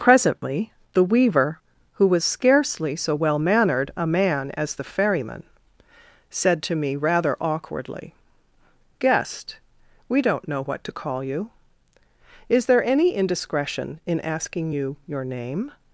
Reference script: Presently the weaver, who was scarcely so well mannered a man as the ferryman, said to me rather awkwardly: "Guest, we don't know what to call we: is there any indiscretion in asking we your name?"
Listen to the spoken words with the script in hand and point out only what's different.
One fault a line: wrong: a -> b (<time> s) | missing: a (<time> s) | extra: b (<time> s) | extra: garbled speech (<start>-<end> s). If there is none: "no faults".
wrong: we -> you (11.2 s)
wrong: we -> you (14.7 s)